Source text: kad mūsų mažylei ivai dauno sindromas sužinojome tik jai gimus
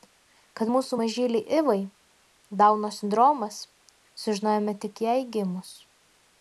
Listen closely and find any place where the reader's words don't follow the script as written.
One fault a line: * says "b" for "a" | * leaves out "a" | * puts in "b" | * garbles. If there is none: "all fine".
all fine